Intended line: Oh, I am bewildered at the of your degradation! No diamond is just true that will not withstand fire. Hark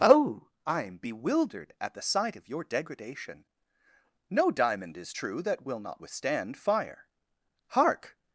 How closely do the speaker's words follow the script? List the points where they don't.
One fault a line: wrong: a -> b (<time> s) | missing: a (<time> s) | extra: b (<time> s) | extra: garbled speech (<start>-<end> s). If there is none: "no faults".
extra: sight (2.0 s)
missing: just (5.1 s)